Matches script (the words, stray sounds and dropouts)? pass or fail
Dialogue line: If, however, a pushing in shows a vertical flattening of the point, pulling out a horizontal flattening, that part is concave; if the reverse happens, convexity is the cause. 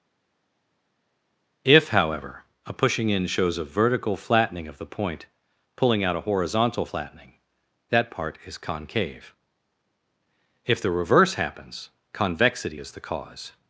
pass